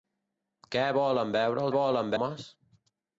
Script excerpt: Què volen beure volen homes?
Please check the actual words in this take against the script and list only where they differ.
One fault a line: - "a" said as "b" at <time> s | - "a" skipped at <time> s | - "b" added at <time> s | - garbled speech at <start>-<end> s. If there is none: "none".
none